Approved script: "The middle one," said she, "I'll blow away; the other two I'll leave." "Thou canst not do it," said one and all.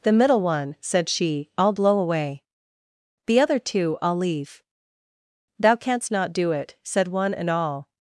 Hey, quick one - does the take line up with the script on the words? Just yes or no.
yes